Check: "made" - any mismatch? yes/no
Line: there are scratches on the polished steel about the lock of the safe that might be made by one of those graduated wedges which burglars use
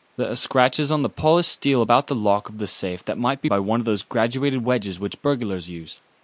yes